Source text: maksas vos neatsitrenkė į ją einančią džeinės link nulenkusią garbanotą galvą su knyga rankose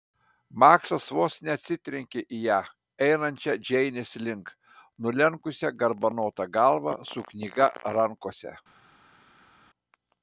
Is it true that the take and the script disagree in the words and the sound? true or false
false